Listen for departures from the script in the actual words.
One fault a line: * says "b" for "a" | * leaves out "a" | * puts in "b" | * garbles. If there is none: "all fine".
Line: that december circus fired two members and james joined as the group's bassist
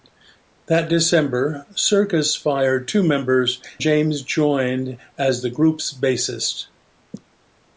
* leaves out "and"